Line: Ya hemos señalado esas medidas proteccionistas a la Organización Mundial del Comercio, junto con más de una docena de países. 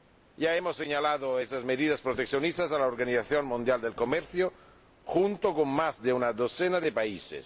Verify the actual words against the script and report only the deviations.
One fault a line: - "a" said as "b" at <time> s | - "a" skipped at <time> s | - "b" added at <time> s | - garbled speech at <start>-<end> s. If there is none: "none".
none